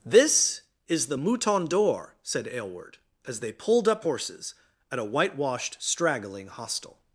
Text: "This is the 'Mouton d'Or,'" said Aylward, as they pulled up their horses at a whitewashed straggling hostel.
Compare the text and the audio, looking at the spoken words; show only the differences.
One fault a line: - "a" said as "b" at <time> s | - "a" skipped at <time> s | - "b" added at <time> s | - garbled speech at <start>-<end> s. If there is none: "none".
- "their" skipped at 4.0 s